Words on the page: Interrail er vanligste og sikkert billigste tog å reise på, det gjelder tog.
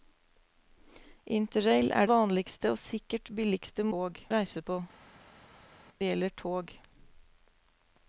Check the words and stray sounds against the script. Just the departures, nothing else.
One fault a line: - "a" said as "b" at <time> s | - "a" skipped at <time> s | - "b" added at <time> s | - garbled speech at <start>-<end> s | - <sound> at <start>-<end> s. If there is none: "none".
none